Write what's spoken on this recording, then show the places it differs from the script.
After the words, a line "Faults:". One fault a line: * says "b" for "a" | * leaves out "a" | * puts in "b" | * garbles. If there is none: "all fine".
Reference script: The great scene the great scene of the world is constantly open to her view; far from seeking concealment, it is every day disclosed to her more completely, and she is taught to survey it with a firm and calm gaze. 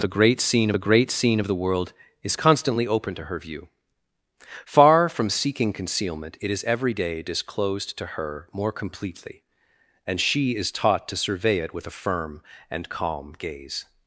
The great scene the great scene of the world is constantly open to her view; far from seeking concealment, it is every day disclosed to her more completely, and she is taught to survey it with a firm and calm gaze.
Faults:
all fine